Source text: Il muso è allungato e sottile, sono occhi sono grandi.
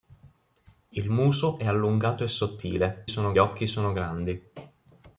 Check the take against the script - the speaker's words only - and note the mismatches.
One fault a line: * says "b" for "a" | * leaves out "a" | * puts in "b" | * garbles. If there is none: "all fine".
all fine